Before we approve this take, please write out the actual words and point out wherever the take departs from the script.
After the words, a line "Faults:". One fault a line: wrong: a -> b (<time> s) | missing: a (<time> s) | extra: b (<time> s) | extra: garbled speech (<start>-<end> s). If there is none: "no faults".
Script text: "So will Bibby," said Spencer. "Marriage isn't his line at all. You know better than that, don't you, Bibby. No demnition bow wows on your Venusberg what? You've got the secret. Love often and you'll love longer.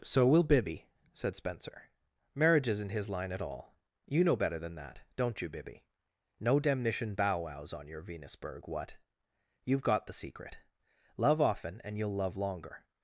"So will Bibby," said Spencer. "Marriage isn't his line at all. You know better than that, don't you, Bibby. No demnition bow wows on your Venusberg what? You've got the secret. Love often and you'll love longer.
Faults:
no faults